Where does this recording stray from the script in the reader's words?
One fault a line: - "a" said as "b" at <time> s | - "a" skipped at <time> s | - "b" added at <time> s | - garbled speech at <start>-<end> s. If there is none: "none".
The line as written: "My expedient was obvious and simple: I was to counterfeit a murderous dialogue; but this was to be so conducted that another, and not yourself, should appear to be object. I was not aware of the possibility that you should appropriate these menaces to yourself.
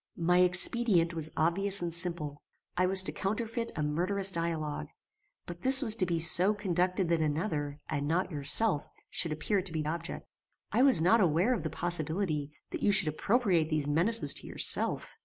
none